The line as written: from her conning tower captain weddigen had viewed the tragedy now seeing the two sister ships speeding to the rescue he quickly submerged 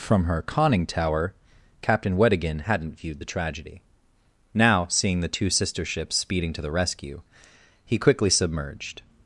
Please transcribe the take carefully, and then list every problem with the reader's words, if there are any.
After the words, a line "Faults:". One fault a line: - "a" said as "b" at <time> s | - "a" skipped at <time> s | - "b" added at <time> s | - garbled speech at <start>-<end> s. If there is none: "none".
from her conning tower captain weddigen hadn't viewed the tragedy now seeing the two sister ships speeding to the rescue he quickly submerged
Faults:
- "had" said as "hadn't" at 2.6 s